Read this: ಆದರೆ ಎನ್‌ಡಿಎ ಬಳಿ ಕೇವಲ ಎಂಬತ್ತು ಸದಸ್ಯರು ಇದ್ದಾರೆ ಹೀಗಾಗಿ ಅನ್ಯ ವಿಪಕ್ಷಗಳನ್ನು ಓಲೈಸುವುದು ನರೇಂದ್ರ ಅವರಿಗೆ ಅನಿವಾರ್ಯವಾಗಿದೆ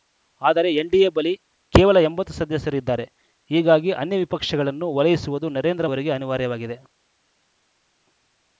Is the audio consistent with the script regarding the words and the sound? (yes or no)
yes